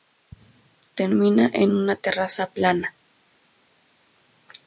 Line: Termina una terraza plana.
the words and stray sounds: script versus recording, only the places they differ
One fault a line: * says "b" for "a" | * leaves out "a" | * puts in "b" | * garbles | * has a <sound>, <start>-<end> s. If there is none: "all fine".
* puts in "en"